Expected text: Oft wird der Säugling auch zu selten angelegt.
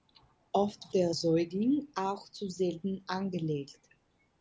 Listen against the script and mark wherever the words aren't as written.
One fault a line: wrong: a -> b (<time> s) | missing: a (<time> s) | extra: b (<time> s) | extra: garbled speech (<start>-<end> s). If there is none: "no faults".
missing: wird (0.9 s)